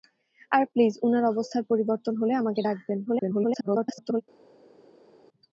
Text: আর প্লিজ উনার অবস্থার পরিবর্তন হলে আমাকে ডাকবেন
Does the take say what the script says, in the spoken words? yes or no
no